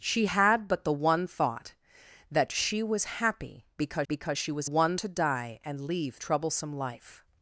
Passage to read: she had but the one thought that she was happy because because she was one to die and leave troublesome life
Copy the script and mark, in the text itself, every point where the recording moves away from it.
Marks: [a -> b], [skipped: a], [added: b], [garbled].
she had but the one thought that she was happy because because she was one to die and leave troublesome life